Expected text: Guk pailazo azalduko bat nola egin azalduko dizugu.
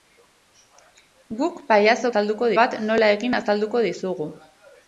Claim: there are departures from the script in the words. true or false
false